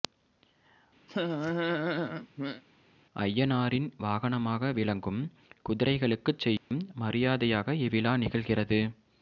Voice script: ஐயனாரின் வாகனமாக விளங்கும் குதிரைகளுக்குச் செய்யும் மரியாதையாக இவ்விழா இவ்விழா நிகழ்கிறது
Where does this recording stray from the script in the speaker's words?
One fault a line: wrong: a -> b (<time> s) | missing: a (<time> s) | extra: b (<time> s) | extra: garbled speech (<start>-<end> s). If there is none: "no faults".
missing: இவ்விழா (8.1 s)